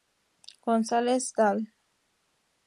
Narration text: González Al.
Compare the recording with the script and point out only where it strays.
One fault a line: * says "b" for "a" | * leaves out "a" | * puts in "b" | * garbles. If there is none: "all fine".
all fine